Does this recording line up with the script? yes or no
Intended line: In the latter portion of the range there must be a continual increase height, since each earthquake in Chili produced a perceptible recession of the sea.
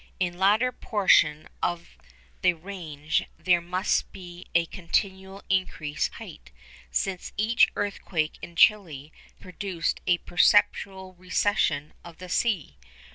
yes